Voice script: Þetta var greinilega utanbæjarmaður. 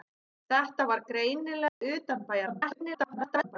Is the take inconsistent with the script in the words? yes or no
yes